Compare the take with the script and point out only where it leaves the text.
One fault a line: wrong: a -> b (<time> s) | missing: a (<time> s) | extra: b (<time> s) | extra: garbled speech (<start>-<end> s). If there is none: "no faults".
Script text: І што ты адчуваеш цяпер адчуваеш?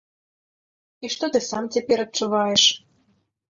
wrong: адчуваеш -> сам (1.5 s)